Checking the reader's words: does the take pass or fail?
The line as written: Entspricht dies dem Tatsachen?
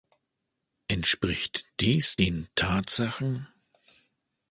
fail